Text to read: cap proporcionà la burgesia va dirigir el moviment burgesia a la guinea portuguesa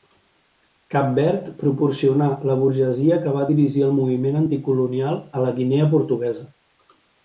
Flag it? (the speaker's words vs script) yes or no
yes